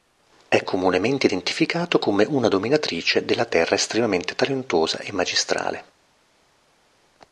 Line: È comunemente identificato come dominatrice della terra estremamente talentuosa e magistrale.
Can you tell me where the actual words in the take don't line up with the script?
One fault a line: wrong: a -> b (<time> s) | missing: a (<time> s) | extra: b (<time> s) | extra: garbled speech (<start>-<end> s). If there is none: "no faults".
extra: una (2.3 s)